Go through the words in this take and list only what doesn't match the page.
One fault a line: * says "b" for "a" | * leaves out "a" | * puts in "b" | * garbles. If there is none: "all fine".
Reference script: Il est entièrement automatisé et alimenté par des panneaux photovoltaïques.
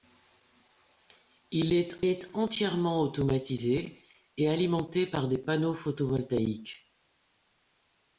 * puts in "est"